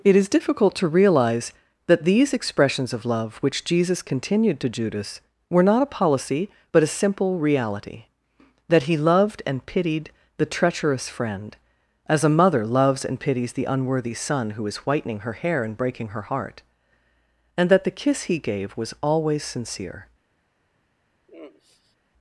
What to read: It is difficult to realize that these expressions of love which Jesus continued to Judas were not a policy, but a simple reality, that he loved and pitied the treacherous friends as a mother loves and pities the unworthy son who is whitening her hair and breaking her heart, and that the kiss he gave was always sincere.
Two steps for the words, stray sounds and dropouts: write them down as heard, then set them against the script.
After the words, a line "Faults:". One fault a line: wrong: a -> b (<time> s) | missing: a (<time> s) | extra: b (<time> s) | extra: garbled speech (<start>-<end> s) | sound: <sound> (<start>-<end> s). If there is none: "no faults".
It is difficult to realize that these expressions of love which Jesus continued to Judas were not a policy, but a simple reality, that he loved and pitied the treacherous friend as a mother loves and pities the unworthy son who is whitening her hair and breaking her heart, and that the kiss he gave was always sincere.
Faults:
wrong: friends -> friend (11.1 s)
sound: sigh (21.3-22.0 s)